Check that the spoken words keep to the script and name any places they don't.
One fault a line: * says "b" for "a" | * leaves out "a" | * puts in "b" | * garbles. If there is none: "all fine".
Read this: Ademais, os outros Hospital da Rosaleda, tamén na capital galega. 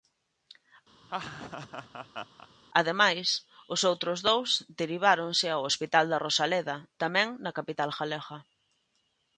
* puts in "dous deriváronse ao"